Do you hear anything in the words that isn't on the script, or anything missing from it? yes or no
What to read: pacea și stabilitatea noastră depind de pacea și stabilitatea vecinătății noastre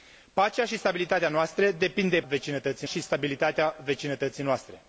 yes